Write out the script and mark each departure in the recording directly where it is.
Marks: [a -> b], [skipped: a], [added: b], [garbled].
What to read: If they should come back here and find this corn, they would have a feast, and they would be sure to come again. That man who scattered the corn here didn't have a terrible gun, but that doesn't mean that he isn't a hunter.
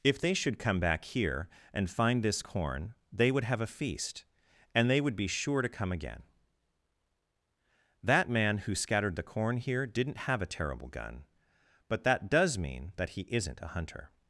If they should come back here and find this corn, they would have a feast, and they would be sure to come again. That man who scattered the corn here didn't have a terrible gun, but that [doesn't -> does] mean that he isn't a hunter.